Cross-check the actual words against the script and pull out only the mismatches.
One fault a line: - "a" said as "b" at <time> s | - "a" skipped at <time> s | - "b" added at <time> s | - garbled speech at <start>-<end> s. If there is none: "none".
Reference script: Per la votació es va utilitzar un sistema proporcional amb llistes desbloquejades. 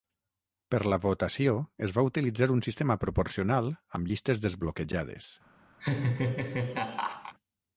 none